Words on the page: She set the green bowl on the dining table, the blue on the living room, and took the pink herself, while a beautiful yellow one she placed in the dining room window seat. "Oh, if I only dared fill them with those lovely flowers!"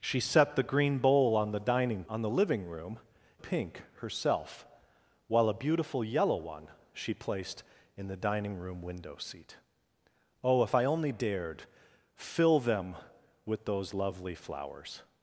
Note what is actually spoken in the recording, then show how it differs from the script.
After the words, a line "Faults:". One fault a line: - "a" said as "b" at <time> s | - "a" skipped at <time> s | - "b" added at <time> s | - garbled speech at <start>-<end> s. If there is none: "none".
She set the green bowl on the dining on the living room, pink herself, while a beautiful yellow one she placed in the dining room window seat. "Oh, if I only dared fill them with those lovely flowers!"
Faults:
- "table the blue" skipped at 2.0 s
- "and took the" skipped at 3.0 s